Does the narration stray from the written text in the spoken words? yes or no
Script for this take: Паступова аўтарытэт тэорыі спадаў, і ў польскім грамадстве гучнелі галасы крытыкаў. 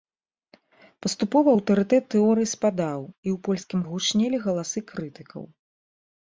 yes